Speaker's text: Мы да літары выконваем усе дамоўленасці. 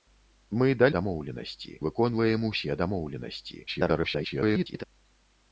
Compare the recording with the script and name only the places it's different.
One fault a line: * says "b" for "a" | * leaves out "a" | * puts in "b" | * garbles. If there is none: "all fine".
* says "дамоўленасці" for "літары"
* garbles